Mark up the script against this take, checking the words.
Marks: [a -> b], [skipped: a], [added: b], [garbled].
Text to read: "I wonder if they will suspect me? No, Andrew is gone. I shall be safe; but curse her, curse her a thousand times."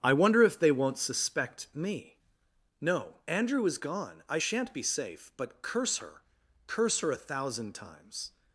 "I wonder if they [will -> won't] suspect me? No, Andrew is gone. I [shall -> shan't] be safe; but curse her, curse her a thousand times."